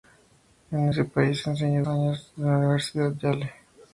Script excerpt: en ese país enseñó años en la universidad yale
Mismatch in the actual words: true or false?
false